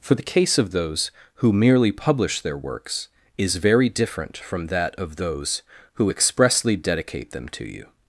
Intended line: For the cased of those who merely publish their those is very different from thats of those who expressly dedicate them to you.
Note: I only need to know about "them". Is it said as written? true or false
true